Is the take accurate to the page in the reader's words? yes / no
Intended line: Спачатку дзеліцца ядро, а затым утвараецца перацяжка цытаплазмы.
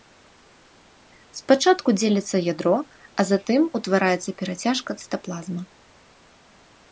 yes